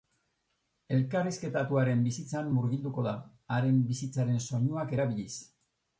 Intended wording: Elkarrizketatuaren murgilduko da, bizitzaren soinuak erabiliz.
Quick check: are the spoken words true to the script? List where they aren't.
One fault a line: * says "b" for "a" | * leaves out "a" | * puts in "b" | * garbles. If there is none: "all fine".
* puts in "bizitzan"
* puts in "haren"